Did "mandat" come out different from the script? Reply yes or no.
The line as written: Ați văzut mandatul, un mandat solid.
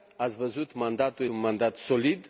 no